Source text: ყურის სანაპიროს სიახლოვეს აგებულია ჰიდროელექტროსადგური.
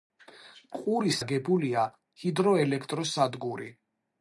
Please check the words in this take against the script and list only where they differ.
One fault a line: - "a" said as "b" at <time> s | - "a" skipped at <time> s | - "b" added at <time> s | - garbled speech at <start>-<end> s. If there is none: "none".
- "სანაპიროს სიახლოვეს" skipped at 1.2 s